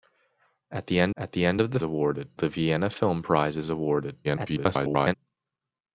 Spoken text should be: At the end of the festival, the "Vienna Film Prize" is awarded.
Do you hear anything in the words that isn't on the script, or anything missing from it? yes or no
yes